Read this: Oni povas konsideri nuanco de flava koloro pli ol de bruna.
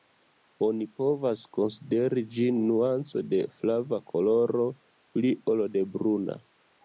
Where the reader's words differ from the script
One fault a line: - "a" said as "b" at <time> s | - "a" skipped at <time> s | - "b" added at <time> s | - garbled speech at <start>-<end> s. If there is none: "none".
- "ĝin" added at 2.4 s